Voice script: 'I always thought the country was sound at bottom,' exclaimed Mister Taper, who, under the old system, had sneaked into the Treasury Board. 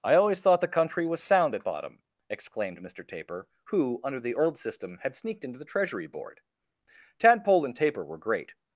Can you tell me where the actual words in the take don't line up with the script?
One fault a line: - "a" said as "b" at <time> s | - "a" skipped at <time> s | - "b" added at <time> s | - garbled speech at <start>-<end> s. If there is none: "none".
- "Tadpole and Taper were great" added at 7.2 s